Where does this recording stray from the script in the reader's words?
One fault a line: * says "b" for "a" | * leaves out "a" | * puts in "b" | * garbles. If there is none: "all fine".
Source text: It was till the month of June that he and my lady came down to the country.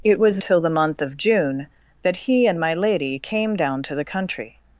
all fine